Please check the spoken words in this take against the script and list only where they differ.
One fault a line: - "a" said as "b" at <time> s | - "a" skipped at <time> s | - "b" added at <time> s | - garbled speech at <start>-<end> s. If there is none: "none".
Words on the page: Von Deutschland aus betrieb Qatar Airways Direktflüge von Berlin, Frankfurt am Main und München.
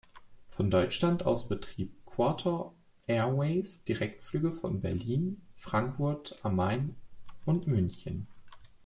none